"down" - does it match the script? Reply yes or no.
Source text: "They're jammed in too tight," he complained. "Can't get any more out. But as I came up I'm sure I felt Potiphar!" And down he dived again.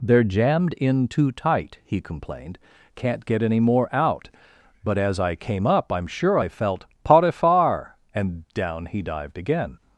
yes